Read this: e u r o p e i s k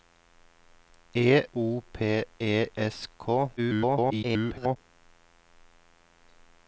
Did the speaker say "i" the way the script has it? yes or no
no